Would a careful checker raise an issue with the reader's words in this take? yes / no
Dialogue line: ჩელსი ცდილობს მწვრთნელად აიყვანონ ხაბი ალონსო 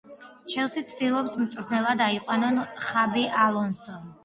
no